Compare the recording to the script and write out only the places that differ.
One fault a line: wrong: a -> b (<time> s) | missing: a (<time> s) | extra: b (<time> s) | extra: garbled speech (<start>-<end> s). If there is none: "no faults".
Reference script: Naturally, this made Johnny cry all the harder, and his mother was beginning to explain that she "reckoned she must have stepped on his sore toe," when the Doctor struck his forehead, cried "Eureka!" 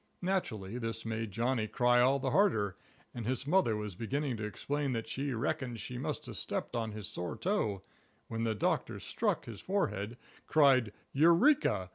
no faults